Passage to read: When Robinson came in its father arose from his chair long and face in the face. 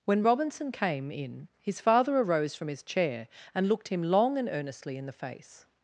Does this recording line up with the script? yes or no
no